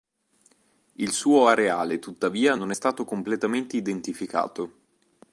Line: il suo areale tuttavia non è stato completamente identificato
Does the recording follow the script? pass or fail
pass